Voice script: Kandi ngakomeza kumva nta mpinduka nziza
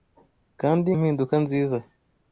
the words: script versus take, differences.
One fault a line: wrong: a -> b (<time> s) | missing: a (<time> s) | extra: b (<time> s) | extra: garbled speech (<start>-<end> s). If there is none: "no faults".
missing: ngakomeza kumva nta (0.9 s)